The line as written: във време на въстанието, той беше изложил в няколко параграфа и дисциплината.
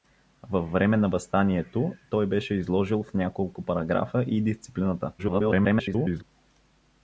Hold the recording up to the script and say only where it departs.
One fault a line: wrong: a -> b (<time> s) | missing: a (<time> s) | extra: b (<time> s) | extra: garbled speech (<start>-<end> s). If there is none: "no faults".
extra: garbled speech (5.2-6.2 s)